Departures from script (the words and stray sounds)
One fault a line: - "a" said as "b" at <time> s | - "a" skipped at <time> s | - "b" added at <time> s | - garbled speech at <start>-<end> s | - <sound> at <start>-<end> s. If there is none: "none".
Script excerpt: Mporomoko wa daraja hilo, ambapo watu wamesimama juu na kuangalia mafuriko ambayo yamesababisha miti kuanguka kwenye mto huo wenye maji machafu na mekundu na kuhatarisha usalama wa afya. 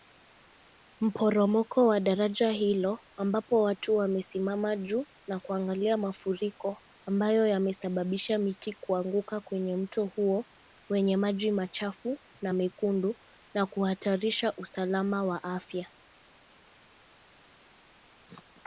none